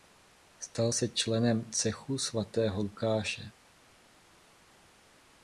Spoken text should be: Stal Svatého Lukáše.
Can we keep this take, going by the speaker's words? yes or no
no